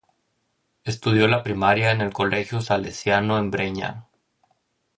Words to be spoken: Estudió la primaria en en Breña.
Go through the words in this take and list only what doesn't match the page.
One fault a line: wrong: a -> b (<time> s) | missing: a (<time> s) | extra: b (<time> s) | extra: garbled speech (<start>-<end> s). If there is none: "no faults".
extra: el Colegio Salesiano (2.0 s)